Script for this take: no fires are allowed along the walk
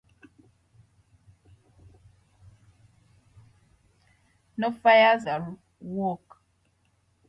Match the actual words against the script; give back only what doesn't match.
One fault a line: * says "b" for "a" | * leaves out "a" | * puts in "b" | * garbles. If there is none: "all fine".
* leaves out "are allowed along"